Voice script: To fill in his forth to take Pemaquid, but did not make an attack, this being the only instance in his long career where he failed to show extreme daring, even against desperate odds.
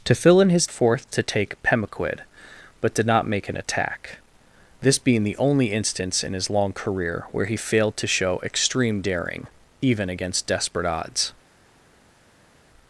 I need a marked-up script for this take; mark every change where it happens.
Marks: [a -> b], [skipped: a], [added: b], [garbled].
To fill in his forth to take Pemaquid, but did not make an attack, this being the only instance in his long career where he failed to show extreme daring, even against desperate odds.